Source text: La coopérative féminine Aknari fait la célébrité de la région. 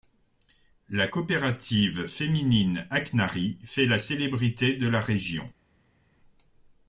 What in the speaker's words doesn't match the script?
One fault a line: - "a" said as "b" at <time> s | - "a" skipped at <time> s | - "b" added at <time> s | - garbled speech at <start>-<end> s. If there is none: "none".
none